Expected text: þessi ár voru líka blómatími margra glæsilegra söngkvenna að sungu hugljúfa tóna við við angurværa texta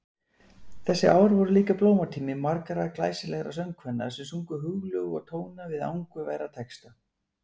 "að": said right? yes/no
no